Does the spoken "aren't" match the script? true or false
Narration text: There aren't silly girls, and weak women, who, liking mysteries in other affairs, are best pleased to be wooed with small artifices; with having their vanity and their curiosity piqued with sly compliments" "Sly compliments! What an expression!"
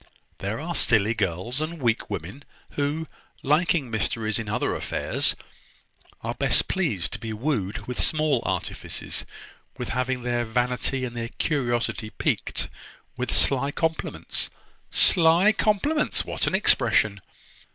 false